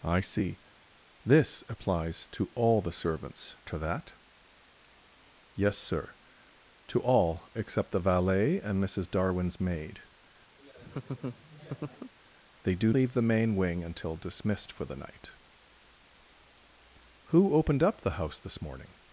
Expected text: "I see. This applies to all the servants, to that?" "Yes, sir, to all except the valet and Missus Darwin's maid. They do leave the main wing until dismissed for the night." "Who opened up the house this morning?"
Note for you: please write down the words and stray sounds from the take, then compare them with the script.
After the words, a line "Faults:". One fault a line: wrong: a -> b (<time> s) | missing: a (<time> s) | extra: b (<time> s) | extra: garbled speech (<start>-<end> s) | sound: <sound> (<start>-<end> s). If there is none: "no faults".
"I see. This applies to all the servants, to that?" "Yes, sir, to all except the valet and Missus Darwin's maid. They do leave the main wing until dismissed for the night." "Who opened up the house this morning?"
Faults:
sound: laugh (10.6-12.1 s)